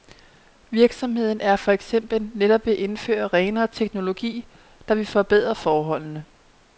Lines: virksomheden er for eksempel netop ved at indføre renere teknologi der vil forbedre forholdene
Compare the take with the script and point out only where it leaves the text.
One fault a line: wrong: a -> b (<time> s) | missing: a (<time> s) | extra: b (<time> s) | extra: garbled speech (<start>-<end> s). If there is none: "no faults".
no faults